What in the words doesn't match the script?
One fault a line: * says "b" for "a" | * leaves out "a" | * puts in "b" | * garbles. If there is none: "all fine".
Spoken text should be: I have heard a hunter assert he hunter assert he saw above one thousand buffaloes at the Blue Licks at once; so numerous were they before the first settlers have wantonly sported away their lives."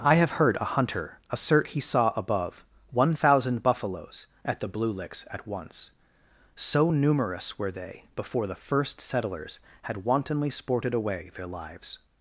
* leaves out "hunter assert he"
* says "had" for "have"